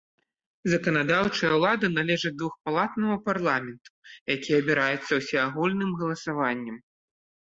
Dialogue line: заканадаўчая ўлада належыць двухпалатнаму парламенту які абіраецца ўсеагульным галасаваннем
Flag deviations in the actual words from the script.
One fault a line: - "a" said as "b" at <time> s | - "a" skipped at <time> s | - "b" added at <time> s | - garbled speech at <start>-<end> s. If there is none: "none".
none